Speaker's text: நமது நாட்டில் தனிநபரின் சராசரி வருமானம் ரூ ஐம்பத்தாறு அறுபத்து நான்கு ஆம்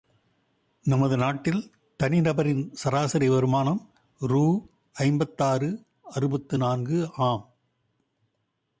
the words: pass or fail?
pass